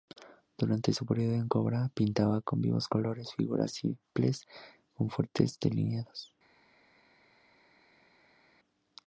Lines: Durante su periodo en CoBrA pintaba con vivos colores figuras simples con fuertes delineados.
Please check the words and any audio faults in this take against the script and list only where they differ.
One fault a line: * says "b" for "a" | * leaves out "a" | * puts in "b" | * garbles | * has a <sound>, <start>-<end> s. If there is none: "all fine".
all fine